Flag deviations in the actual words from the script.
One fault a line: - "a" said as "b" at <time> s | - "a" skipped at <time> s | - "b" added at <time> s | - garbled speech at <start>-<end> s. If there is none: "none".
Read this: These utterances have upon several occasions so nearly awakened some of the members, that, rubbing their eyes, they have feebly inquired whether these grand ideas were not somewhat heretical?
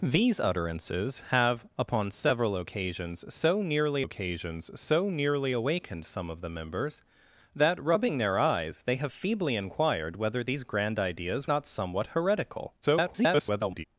- "occasions so nearly" added at 4.0 s
- "were" skipped at 11.5 s
- garbled speech at 12.8-13.8 s